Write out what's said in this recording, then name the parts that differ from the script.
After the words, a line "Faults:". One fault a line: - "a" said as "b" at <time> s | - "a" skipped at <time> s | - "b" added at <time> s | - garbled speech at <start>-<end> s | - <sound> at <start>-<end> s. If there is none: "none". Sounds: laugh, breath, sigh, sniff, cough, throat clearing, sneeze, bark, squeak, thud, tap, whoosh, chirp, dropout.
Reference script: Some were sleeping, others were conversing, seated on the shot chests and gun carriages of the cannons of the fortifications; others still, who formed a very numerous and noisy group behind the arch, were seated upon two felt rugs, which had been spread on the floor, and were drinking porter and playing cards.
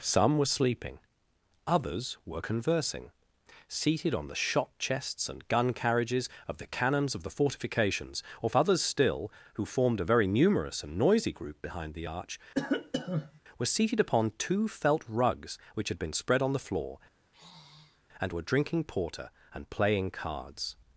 Some were sleeping, others were conversing, seated on the shot chests and gun carriages of the cannons of the fortifications; or others still, who formed a very numerous and noisy group behind the arch, were seated upon two felt rugs, which had been spread on the floor, and were drinking porter and playing cards.
Faults:
- "or" added at 8.4 s
- cough at 12.5-13.4 s
- sigh at 17.2-18.0 s